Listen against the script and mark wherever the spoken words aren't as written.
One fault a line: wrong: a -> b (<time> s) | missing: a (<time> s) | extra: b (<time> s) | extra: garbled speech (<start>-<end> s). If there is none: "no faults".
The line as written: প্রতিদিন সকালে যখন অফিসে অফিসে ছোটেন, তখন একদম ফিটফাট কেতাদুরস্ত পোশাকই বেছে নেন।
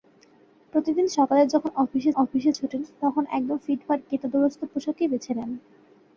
no faults